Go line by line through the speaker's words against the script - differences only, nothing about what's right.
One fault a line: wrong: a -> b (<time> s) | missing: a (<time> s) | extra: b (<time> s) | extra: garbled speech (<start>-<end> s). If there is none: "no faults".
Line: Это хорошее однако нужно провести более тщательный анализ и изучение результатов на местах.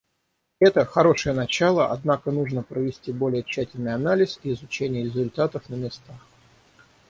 extra: начало (1.4 s)